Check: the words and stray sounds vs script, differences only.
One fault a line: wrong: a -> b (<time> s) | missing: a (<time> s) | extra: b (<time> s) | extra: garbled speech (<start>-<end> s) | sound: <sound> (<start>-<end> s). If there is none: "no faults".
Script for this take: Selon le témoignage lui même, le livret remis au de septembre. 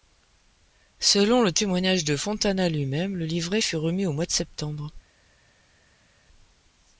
extra: de Fontana (2.0 s)
extra: fut (3.6 s)
extra: mois (4.1 s)